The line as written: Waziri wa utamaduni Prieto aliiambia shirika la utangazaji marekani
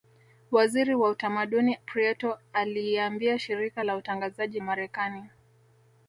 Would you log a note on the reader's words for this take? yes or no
no